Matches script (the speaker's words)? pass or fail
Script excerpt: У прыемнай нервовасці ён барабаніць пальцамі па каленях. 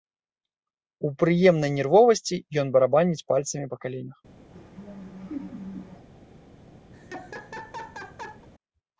pass